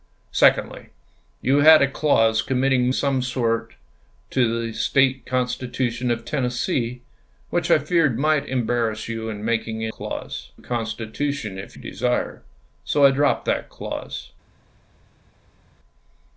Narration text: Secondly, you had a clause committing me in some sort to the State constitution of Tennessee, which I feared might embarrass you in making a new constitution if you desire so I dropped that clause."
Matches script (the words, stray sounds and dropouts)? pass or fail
fail